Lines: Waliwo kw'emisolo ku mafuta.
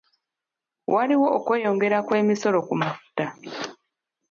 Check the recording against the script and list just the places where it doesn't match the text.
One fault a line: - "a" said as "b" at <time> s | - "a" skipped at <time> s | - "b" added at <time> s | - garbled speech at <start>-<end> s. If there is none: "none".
- "okweyongera" added at 1.4 s